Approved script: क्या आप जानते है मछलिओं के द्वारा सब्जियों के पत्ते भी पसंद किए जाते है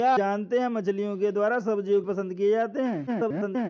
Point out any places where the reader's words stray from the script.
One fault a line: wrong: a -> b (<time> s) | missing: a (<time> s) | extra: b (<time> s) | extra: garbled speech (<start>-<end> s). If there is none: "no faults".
missing: आप (0.1 s)
missing: के पत्ते भी (2.0 s)
extra: garbled speech (3.1-3.7 s)